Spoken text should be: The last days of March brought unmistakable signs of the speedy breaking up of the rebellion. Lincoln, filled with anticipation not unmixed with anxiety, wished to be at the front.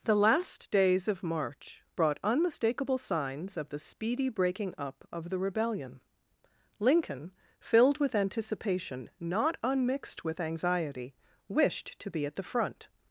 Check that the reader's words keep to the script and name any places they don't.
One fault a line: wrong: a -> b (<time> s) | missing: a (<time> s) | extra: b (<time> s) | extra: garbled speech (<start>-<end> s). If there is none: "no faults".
no faults